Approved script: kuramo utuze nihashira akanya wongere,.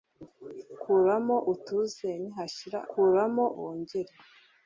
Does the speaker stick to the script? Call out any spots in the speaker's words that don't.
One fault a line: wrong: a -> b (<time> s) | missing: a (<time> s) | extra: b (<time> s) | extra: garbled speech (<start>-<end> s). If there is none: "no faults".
wrong: akanya -> kuramo (2.9 s)